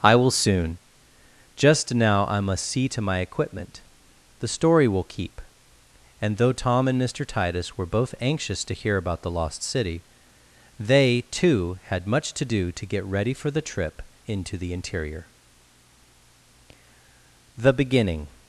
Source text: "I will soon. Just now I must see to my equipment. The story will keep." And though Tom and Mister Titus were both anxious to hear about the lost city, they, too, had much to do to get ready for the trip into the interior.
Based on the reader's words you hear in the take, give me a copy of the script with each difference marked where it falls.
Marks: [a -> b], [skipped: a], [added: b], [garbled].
"I will soon. Just now I must see to my equipment. The story will keep." And though Tom and Mister Titus were both anxious to hear about the lost city, they, too, had much to do to get ready for the trip into the interior. [added: The beginning]